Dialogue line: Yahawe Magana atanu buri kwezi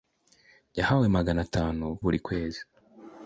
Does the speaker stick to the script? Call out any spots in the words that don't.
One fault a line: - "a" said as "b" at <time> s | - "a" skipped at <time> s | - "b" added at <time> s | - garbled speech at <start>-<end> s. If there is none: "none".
none